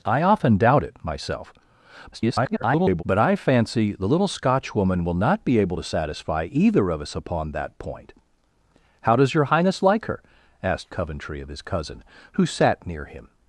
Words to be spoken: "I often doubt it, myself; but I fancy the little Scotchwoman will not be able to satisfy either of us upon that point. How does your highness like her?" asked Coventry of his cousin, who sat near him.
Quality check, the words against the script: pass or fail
fail